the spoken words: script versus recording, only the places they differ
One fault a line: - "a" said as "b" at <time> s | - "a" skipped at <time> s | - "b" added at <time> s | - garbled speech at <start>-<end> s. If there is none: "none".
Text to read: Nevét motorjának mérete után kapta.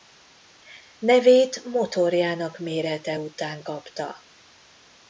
none